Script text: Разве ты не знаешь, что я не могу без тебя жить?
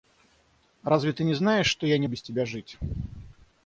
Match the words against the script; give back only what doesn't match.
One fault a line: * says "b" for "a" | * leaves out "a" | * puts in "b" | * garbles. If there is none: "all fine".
* leaves out "могу"